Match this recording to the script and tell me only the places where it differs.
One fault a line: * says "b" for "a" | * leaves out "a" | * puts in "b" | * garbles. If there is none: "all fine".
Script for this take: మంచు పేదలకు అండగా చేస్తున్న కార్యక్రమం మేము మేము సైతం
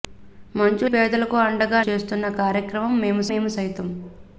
all fine